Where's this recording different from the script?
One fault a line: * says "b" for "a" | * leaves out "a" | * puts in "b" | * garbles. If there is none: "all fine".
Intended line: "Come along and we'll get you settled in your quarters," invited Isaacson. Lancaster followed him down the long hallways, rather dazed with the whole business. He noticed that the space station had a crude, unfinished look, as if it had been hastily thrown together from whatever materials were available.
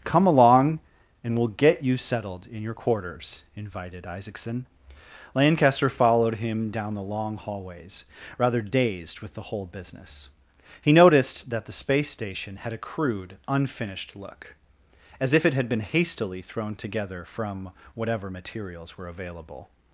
all fine